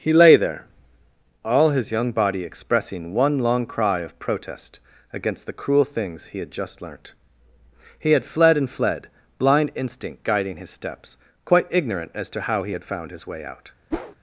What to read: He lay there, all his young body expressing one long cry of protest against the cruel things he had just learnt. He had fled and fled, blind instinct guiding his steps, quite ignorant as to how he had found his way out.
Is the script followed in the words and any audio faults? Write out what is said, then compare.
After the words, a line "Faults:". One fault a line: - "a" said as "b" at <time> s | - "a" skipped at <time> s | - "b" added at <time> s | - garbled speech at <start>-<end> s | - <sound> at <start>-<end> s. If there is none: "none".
He lay there, all his young body expressing one long cry of protest against the cruel things he had just learnt. He had fled and fled, blind instinct guiding his steps, quite ignorant as to how he had found his way out.
Faults:
- whoosh at 13.9-14.2 s